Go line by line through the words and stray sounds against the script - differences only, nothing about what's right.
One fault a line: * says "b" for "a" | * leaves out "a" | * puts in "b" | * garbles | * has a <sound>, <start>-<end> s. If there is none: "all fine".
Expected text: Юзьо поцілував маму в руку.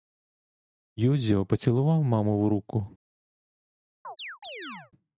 * has a chirp, 4.0-4.9 s